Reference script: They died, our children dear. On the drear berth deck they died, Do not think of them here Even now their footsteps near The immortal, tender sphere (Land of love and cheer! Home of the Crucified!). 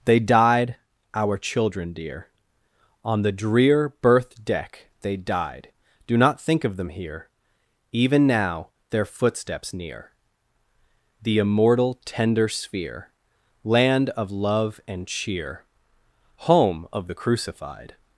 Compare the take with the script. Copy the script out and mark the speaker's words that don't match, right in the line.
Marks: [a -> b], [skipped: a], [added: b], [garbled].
They died, our children dear. On the drear berth deck they died, Do not think of them here Even now their footsteps near The immortal, tender sphere (Land of love and cheer! Home of the Crucified!).